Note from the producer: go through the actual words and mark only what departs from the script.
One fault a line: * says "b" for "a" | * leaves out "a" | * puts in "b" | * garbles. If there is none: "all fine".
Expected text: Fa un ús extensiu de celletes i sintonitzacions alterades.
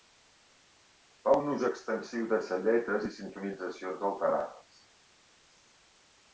all fine